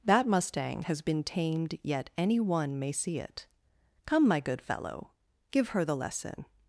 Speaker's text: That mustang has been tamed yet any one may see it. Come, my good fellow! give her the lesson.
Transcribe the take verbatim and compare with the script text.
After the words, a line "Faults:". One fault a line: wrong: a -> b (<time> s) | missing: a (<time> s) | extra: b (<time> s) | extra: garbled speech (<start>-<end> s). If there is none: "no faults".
That mustang has been tamed yet any one may see it. Come, my good fellow! give her the lesson.
Faults:
no faults